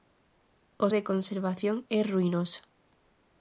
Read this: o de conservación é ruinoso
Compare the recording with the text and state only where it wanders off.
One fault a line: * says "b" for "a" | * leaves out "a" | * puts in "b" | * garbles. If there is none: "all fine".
all fine